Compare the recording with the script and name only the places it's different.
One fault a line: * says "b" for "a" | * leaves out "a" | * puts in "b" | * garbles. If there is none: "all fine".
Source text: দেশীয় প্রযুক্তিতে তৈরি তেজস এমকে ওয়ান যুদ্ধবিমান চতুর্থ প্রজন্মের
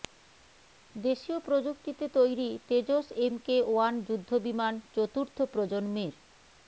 all fine